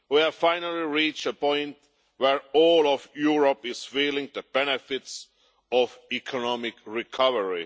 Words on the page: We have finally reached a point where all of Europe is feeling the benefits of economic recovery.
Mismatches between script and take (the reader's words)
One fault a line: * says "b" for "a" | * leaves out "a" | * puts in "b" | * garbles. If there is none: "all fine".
all fine